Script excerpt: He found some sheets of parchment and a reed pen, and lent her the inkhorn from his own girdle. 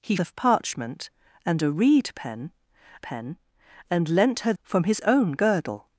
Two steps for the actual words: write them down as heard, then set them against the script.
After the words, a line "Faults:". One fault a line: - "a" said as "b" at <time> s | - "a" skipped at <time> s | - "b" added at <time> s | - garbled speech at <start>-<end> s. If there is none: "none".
He of parchment and a reed pen pen, and lent her from his own girdle.
Faults:
- "found some sheets" skipped at 0.1 s
- "pen" added at 3.0 s
- "the inkhorn" skipped at 4.5 s